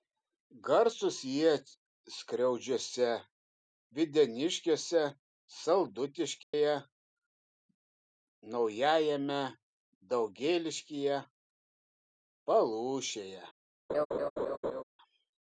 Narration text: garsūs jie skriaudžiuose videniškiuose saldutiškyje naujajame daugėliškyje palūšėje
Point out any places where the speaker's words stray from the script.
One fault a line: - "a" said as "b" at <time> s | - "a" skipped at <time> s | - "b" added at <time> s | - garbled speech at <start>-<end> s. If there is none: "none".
none